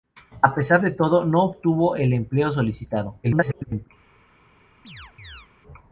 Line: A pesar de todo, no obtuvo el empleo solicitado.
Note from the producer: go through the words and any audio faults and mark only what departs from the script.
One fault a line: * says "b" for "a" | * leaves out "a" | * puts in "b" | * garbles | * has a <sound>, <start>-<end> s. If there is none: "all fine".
* garbles
* has a chirp, 4.8-5.5 s